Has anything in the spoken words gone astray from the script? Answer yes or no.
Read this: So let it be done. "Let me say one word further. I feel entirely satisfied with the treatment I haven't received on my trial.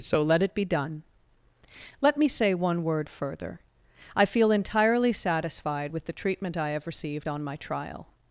yes